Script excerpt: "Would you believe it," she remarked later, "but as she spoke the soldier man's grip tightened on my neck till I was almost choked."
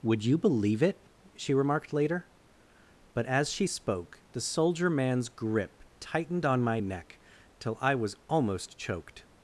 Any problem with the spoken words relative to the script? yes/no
no